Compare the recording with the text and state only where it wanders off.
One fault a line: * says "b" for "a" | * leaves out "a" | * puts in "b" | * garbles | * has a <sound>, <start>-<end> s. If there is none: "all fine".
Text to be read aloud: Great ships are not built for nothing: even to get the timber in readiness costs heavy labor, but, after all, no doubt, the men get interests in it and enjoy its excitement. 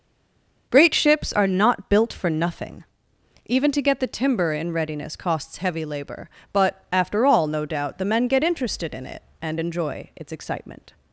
* says "interested" for "interests"